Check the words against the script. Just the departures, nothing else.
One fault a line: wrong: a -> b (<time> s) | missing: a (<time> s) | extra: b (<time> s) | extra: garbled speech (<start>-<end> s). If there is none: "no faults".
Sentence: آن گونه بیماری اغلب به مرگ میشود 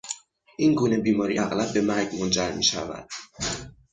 wrong: آن -> این (0.6 s)
extra: منجر (2.2 s)